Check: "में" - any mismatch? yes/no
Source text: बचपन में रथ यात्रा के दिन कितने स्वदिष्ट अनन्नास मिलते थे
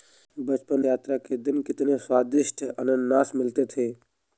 yes